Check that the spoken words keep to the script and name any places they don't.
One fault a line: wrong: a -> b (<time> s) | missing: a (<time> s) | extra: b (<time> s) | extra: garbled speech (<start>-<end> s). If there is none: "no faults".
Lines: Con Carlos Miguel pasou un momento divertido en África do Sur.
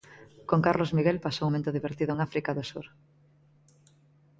missing: un (1.5 s)